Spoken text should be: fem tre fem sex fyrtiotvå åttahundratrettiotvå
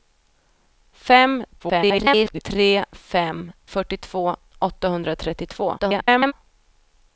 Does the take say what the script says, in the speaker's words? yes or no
no